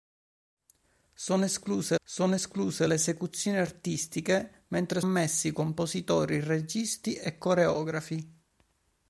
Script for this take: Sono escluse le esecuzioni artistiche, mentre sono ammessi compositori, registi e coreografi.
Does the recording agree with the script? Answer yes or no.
no